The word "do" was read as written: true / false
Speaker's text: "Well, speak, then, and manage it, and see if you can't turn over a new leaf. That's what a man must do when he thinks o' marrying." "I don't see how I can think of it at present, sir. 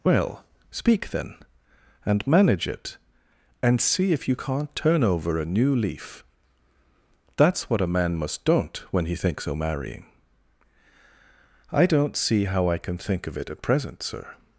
false